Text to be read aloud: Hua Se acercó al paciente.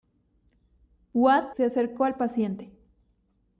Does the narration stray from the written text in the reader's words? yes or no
no